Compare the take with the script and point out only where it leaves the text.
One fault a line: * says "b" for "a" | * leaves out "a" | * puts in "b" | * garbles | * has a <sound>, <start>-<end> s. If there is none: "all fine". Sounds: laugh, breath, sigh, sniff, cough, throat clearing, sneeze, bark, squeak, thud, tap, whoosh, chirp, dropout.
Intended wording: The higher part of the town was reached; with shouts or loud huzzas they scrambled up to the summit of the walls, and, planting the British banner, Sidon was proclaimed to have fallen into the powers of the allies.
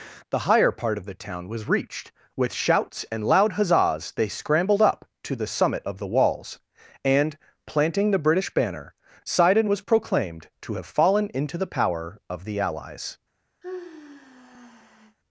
* says "and" for "or"
* says "power" for "powers"
* has a sigh, 13.6-15.2 s